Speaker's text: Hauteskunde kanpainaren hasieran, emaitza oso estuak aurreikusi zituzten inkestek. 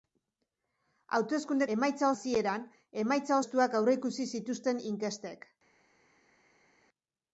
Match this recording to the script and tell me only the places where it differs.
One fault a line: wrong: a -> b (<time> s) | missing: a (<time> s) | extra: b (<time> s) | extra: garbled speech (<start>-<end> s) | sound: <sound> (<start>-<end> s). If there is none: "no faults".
wrong: kanpainaren -> emaitza (1.8 s)
missing: oso (3.4 s)